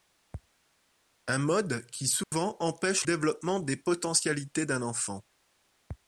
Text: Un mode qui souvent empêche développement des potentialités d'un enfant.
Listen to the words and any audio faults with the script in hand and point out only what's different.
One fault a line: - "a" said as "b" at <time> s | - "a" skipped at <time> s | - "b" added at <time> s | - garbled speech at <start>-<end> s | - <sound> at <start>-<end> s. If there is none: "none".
- dropout at 2.2-2.3 s